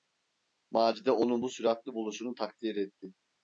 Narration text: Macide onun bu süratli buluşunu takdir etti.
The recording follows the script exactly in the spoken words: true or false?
true